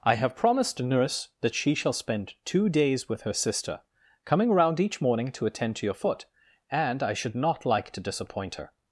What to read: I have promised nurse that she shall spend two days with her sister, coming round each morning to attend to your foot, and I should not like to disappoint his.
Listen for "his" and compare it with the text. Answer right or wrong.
wrong